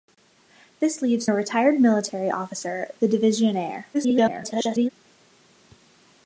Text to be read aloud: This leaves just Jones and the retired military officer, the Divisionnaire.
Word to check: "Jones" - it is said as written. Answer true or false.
false